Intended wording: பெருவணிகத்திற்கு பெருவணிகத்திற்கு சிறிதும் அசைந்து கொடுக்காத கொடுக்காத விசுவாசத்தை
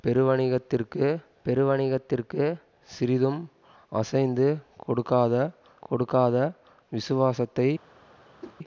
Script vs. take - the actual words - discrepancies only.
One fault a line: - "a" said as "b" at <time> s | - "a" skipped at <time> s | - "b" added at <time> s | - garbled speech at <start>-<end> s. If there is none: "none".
none